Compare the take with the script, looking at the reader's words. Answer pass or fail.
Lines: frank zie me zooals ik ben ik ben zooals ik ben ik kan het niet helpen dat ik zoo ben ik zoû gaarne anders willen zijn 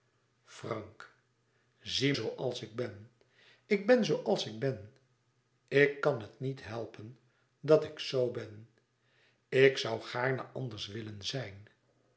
fail